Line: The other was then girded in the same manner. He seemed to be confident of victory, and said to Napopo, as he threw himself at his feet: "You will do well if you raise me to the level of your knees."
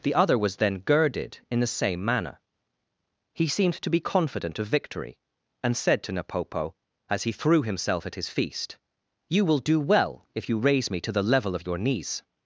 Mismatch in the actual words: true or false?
true